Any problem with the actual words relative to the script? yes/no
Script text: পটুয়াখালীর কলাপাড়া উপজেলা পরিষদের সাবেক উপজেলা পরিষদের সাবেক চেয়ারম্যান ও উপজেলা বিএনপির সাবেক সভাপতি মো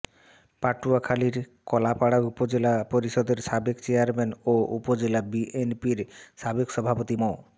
yes